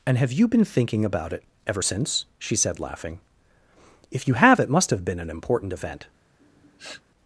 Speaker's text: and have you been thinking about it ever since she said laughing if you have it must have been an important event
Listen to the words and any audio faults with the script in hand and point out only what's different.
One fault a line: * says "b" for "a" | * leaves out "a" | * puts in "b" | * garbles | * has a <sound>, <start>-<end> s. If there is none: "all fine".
* has a sniff, 6.4-7.0 s